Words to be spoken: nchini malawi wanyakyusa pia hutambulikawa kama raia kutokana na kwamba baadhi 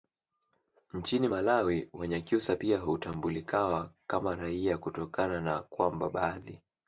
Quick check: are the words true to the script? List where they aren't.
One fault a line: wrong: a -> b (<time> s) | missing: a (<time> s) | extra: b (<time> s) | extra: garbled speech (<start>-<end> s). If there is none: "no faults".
no faults